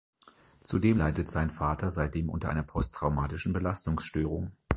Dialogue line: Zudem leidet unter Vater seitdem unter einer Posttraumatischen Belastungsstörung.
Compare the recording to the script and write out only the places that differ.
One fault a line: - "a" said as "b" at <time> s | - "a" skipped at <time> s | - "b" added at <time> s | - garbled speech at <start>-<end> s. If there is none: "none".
- "unter" said as "sein" at 1.3 s